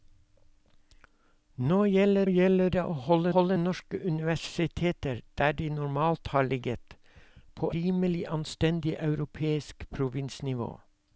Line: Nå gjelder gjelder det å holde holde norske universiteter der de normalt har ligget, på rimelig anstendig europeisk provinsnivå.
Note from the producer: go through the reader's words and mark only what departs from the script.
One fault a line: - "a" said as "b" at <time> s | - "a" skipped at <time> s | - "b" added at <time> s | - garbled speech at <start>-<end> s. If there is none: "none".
none